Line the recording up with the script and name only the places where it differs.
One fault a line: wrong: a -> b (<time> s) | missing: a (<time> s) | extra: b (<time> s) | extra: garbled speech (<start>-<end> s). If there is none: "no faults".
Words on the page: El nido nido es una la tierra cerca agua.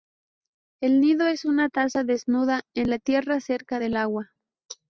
missing: nido (1.3 s)
extra: taza desnuda en (1.7 s)
extra: del (3.8 s)